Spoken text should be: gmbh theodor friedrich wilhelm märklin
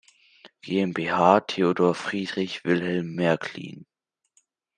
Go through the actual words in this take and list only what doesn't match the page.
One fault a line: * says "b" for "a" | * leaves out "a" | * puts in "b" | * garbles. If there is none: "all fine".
all fine